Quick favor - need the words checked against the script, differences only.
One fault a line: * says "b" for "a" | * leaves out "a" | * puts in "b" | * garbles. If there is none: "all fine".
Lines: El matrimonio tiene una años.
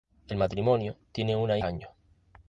all fine